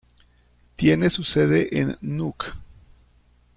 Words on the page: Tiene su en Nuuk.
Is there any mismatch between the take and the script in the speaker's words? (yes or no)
yes